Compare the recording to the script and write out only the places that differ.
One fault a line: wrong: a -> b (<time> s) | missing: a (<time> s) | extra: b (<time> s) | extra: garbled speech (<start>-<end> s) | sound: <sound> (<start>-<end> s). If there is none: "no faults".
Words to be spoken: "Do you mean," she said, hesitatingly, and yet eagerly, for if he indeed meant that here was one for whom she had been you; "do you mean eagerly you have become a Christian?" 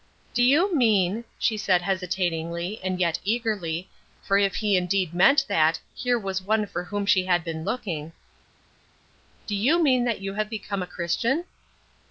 wrong: you -> looking (7.6 s)
wrong: eagerly -> that (10.0 s)